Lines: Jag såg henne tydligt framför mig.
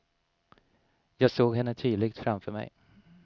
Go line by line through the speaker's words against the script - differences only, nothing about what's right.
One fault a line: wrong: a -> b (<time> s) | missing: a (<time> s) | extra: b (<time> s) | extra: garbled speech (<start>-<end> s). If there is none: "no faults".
no faults